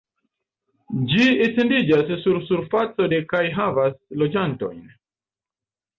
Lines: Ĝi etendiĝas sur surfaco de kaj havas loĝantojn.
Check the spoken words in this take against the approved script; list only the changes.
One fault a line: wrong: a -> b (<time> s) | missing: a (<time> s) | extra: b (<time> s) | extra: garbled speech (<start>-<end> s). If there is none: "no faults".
no faults